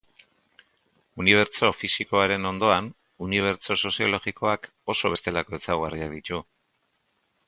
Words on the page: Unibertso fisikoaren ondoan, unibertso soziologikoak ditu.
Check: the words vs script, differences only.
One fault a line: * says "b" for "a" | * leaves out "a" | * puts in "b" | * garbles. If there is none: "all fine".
* puts in "oso bestelako ezaugarriak"